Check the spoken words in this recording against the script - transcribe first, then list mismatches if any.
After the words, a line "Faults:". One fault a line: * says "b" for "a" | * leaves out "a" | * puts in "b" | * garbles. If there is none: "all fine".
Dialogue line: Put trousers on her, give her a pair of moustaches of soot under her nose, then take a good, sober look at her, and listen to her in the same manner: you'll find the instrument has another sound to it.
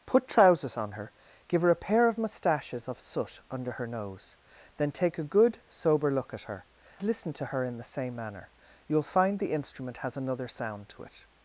Put trousers on her, give her a pair of moustaches of soot under her nose, then take a good, sober look at her, listen to her in the same manner: you'll find the instrument has another sound to it.
Faults:
* leaves out "and"